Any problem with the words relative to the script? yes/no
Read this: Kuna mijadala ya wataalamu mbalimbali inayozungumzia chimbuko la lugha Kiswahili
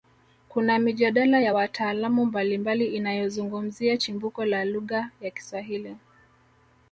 yes